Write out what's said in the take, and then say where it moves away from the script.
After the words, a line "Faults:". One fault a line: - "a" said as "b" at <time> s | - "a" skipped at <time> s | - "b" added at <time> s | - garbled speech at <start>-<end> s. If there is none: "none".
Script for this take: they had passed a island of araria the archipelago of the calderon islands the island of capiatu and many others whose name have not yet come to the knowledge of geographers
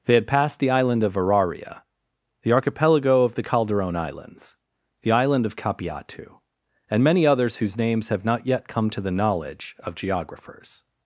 they had passed the island of araria the archipelago of the calderon islands the island of capiatu and many others whose names have not yet come to the knowledge of geographers
Faults:
- "a" said as "the" at 0.6 s
- "name" said as "names" at 7.8 s